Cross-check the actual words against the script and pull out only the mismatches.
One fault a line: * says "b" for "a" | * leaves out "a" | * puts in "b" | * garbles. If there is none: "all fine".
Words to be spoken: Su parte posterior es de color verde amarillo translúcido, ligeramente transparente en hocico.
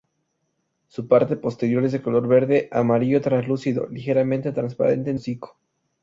all fine